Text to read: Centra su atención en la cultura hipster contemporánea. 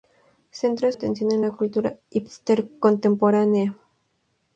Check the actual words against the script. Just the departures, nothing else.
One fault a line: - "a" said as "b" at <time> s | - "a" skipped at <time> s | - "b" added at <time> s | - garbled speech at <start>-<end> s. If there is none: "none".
- "su" skipped at 0.9 s